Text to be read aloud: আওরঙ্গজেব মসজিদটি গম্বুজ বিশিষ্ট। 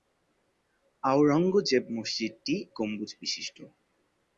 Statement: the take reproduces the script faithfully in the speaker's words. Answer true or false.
true